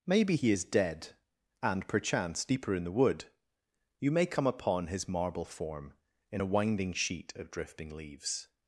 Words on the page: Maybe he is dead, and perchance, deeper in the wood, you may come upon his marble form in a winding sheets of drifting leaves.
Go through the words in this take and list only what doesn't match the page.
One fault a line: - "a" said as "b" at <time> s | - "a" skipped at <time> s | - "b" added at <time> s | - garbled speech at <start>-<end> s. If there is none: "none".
- "sheets" said as "sheet" at 6.9 s